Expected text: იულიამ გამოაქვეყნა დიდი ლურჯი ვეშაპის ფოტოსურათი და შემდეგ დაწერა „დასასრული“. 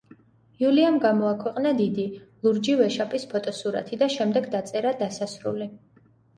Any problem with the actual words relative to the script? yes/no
no